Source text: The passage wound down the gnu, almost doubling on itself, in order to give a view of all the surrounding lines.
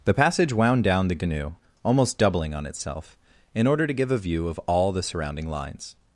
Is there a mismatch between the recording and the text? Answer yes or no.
no